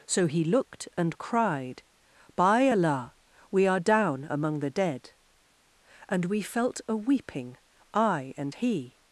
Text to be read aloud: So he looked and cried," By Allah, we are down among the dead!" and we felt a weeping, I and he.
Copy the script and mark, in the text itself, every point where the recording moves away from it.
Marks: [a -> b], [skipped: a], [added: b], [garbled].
So he looked and cried," By Allah, we are down among the dead!" and we felt a weeping, I and he.